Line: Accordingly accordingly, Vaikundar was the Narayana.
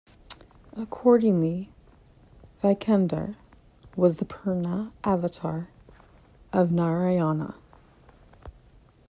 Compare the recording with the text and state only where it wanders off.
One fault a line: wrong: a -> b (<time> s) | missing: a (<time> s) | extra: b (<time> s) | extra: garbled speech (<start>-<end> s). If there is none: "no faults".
missing: accordingly (1.7 s)
extra: Purna avatar of (4.2 s)